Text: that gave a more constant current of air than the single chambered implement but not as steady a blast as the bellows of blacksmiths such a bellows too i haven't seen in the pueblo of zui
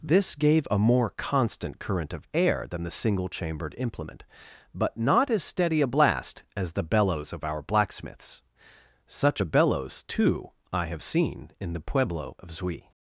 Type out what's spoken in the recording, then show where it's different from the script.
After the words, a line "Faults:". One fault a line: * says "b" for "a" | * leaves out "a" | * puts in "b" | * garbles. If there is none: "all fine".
this gave a more constant current of air than the single chambered implement but not as steady a blast as the bellows of our blacksmiths such a bellows too i have seen in the pueblo of zui
Faults:
* says "this" for "that"
* puts in "our"
* says "have" for "haven't"